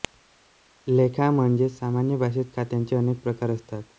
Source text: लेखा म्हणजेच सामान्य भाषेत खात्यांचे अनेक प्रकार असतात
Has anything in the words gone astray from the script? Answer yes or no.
no